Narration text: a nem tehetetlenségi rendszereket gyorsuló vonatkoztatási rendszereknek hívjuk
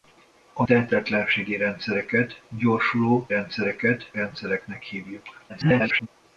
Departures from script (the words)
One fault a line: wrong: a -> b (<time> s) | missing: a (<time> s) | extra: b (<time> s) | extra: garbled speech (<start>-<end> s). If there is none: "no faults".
missing: nem (0.7 s)
wrong: vonatkoztatási -> rendszereket (3.3 s)
extra: garbled speech (5.5-6.1 s)